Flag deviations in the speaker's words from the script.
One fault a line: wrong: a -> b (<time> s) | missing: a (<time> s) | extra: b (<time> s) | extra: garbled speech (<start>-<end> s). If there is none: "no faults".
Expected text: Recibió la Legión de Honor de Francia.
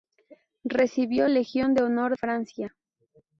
missing: la (1.3 s)
missing: de (2.2 s)